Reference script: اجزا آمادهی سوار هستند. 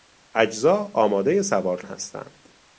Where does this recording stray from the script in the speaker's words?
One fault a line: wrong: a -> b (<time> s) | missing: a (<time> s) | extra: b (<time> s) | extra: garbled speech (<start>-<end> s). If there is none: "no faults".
no faults